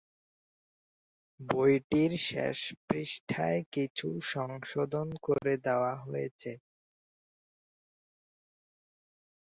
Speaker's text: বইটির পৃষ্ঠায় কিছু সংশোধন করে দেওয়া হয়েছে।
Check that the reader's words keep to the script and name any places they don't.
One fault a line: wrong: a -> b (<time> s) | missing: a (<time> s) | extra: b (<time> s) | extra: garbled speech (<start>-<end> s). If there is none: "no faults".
extra: শেষ (2.3 s)